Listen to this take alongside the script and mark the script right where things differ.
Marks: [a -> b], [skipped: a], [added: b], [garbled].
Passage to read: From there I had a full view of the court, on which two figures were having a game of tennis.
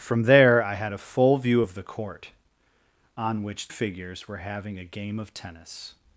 From there I had a full view of the court, on which [skipped: two] figures were having a game of tennis.